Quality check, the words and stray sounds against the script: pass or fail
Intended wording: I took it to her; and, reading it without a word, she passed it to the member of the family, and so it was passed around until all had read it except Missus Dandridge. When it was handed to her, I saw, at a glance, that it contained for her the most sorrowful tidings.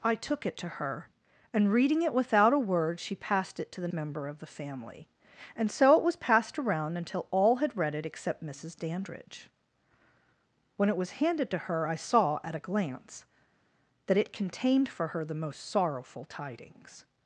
pass